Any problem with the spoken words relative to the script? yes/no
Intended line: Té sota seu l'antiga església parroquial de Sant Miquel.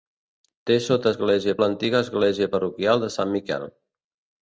yes